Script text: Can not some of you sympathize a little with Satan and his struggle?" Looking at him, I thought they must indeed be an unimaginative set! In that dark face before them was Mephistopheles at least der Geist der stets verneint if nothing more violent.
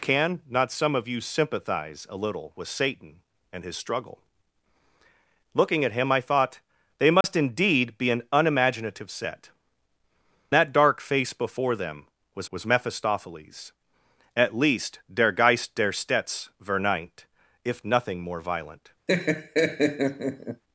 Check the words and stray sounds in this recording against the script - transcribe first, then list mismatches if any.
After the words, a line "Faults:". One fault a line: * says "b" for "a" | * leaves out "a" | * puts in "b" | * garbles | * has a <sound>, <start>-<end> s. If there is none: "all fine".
Can not some of you sympathize a little with Satan and his struggle?" Looking at him, I thought they must indeed be an unimaginative set! That dark face before them was was Mephistopheles at least der Geist der stets verneint if nothing more violent.
Faults:
* has a dropout, 7.2-7.2 s
* leaves out "In"
* puts in "was"
* has a laugh, 19.1-20.6 s